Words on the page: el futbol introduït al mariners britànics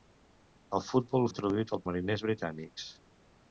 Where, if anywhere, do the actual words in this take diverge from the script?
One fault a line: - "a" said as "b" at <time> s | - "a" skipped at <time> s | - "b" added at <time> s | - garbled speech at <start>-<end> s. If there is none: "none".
none